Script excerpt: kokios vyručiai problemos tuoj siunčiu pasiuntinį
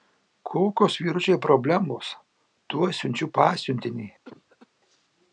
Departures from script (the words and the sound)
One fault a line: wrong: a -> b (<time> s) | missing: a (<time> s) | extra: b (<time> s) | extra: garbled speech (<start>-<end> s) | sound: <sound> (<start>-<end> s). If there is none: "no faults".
sound: cough (4.2-4.7 s)